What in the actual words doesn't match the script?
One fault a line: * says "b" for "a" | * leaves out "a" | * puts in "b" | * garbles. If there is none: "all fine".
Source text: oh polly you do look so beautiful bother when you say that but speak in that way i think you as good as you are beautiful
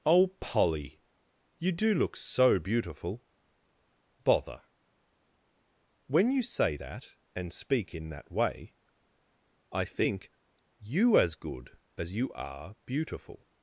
* says "and" for "but"